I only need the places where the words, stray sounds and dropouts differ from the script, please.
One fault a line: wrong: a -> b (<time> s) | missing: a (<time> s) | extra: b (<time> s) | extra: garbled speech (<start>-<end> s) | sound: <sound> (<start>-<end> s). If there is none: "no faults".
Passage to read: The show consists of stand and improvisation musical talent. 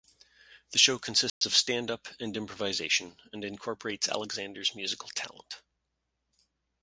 sound: dropout (1.3-1.4 s)
extra: up (1.9 s)
extra: and incorporates Alexander's (3.3 s)